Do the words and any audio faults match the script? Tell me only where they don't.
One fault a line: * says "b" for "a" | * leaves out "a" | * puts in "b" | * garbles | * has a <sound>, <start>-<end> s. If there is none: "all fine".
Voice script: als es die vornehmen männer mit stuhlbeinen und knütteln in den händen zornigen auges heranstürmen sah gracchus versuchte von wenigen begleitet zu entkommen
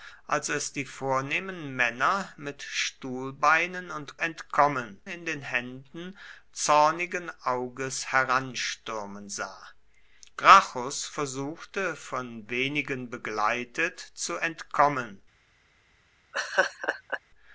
* says "entkommen" for "knütteln"
* has a laugh, 16.3-17.2 s